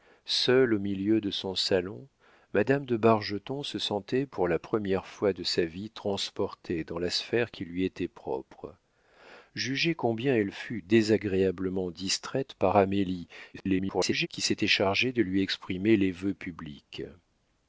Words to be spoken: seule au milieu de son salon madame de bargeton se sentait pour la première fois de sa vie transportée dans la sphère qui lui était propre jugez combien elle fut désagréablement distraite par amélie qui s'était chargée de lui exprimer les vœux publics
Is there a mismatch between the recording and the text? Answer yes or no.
yes